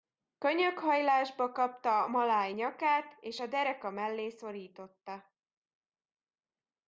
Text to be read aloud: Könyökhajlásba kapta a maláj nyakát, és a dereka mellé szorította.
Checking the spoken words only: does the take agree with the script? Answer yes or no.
yes